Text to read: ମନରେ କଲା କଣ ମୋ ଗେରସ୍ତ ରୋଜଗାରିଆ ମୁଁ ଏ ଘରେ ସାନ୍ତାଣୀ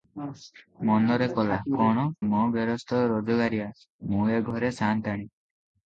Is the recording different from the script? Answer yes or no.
no